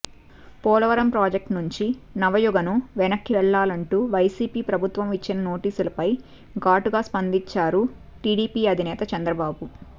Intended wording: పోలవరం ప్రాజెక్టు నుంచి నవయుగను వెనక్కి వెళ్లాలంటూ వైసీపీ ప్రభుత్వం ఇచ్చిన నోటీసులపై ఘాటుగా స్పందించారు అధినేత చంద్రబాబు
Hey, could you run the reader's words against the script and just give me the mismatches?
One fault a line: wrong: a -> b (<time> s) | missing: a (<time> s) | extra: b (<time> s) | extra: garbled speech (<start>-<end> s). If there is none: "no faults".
extra: టీడీపీ (8.2 s)